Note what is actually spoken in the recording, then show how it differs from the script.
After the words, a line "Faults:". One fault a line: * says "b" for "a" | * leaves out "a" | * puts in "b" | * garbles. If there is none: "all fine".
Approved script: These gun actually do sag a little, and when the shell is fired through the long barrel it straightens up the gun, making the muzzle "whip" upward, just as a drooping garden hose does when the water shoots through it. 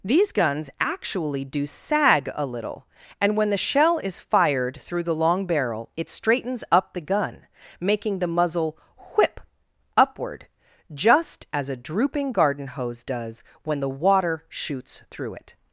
These guns actually do sag a little, and when the shell is fired through the long barrel it straightens up the gun, making the muzzle "whip" upward, just as a drooping garden hose does when the water shoots through it.
Faults:
* says "guns" for "gun"